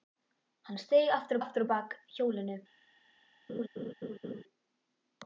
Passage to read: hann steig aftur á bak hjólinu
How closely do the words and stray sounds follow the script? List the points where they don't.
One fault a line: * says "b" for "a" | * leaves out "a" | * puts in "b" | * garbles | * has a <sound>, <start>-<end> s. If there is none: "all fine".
* puts in "aftur"
* has a laugh, 3.5-4.4 s